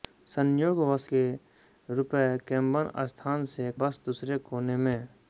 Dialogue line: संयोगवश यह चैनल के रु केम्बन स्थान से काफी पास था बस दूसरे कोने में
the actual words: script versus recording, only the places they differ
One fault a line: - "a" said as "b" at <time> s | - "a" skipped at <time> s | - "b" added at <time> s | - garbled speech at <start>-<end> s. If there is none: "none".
- "यह चैनल" skipped at 1.1 s
- "काफी पास था" skipped at 3.7 s